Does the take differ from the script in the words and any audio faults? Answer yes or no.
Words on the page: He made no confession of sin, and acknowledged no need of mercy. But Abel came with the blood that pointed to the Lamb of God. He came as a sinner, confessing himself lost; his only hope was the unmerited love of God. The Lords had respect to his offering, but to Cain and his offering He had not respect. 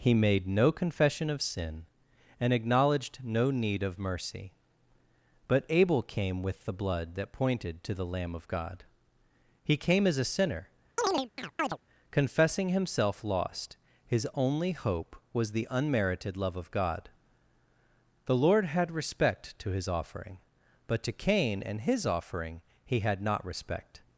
yes